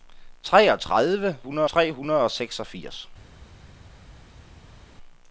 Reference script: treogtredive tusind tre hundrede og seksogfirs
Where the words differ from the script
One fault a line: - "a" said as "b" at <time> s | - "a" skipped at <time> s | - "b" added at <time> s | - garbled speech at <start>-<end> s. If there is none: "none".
- "tusind" said as "hundrede" at 1.4 s